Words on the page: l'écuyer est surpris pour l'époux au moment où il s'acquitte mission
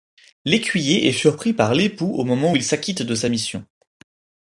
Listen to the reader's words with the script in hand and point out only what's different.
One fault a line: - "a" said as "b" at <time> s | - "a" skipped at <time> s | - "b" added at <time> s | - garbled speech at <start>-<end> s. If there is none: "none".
- "pour" said as "par" at 1.5 s
- "de sa" added at 3.0 s